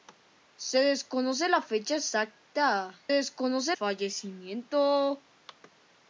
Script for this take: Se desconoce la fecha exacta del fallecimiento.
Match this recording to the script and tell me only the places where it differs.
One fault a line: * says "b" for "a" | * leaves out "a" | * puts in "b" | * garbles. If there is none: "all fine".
* says "desconoce" for "del"